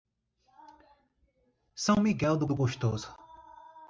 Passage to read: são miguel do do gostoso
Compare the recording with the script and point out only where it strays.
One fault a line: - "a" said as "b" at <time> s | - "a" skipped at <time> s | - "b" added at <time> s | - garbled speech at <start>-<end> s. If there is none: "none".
none